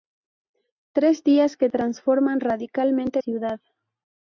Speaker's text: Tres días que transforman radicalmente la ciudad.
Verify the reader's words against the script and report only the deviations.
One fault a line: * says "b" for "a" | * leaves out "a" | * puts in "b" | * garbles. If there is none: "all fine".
* leaves out "la"